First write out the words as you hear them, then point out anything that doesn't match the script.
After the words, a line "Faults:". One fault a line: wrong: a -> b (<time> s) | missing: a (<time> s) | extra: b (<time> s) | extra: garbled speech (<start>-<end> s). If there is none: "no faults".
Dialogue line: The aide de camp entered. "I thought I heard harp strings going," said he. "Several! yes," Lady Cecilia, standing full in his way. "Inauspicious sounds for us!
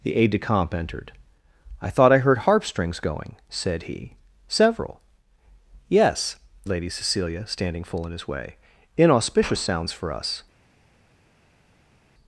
The aide de camp entered. "I thought I heard harp strings going," said he. "Several! yes," Lady Cecilia, standing full in his way. "Inauspicious sounds for us!
Faults:
no faults